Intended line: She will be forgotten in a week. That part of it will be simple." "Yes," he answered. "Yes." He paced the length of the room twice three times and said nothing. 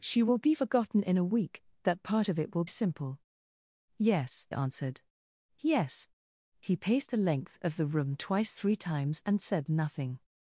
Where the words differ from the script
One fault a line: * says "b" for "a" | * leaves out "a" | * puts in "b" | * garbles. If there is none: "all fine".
* leaves out "be"
* leaves out "he"